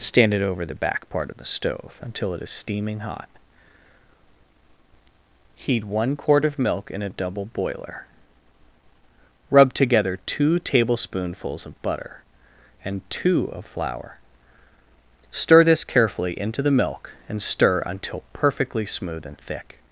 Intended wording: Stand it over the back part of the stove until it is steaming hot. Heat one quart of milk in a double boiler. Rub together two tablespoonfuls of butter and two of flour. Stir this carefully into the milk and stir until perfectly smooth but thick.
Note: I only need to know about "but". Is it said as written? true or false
false